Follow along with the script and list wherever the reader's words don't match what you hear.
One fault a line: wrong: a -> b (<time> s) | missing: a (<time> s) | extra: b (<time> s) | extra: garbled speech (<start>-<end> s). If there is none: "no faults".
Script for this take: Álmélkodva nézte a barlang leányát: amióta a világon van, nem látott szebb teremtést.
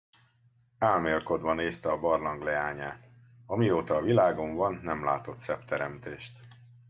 no faults